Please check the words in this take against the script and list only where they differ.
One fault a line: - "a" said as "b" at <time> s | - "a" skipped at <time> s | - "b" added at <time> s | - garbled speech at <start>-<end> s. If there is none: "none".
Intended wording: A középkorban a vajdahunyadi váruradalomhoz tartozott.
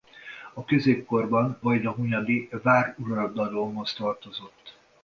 - "a" skipped at 1.6 s